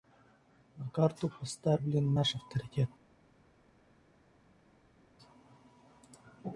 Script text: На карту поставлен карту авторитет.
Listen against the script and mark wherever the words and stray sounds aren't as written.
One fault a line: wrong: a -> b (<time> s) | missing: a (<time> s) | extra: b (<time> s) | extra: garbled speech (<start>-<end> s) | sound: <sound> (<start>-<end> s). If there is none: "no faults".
wrong: карту -> наш (2.1 s)